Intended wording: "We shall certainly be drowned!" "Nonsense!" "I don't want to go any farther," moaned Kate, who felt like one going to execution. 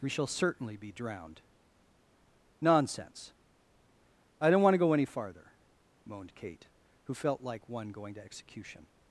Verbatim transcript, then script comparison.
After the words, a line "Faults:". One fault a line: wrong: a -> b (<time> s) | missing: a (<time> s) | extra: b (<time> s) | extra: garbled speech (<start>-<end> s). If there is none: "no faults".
"We shall certainly be drowned!" "Nonsense!" "I don't want to go any farther," moaned Kate, who felt like one going to execution.
Faults:
no faults